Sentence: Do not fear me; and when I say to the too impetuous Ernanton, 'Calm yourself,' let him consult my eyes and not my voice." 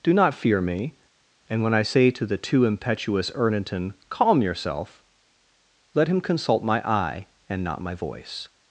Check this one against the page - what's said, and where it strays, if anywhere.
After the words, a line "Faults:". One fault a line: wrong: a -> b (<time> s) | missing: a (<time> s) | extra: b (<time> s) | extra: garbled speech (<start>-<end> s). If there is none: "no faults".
Do not fear me; and when I say to the too impetuous Ernanton, 'Calm yourself,' let him consult my eye and not my voice."
Faults:
wrong: eyes -> eye (6.9 s)